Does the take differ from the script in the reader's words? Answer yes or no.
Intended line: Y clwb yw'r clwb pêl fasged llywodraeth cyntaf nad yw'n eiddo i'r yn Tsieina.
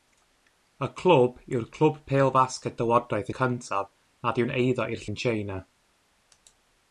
no